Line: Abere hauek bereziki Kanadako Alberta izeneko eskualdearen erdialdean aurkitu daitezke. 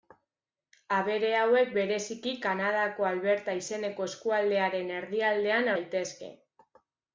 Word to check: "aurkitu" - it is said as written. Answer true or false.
false